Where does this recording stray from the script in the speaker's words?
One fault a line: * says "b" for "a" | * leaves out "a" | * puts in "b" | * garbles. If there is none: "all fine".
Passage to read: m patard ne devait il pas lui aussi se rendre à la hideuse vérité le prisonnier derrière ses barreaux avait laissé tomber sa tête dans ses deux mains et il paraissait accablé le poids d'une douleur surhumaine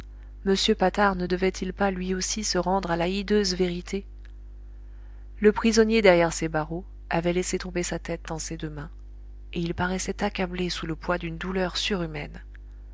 * puts in "sous"